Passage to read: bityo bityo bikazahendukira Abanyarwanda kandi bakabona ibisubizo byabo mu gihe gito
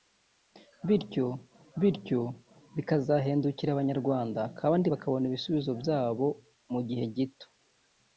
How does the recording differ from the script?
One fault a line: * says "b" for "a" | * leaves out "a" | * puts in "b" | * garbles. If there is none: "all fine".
all fine